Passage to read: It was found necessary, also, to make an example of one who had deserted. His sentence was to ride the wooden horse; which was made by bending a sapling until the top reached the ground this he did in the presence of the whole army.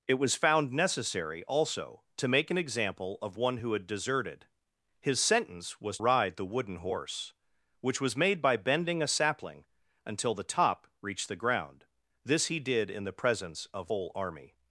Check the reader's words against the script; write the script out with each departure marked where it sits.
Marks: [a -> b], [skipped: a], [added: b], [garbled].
It was found necessary, also, to make an example of one who had deserted. His sentence was [skipped: to] ride the wooden horse; which was made by bending a sapling until the top reached the ground this he did in the presence of [skipped: the] whole army.